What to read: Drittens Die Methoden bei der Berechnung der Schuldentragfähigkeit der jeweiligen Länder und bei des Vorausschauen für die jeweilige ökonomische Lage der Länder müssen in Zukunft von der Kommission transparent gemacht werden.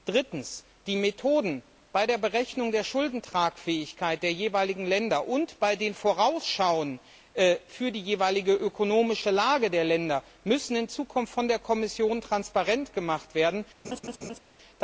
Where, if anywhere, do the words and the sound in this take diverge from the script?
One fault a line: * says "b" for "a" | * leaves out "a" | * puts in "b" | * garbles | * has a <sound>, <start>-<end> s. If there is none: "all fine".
* says "den" for "des"
* has a laugh, 13.8-14.4 s